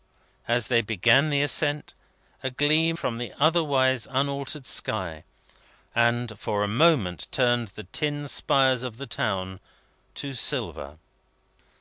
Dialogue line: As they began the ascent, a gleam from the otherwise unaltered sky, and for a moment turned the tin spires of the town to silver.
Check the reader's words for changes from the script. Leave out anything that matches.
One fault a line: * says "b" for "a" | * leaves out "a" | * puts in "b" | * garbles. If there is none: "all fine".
all fine